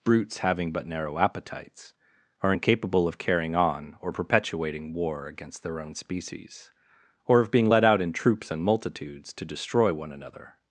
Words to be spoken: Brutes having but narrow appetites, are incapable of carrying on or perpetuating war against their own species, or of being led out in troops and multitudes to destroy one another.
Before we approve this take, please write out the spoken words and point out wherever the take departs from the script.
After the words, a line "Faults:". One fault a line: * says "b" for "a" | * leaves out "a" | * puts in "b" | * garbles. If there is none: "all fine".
Brutes having but narrow appetites, are incapable of carrying on or perpetuating war against their own species, or of being led out in troops and multitudes to destroy one another.
Faults:
all fine